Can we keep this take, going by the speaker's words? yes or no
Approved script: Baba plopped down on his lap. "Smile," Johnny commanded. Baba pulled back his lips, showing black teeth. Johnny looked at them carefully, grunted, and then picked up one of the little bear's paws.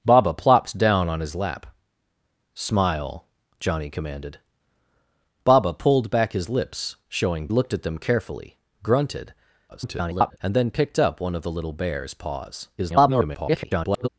no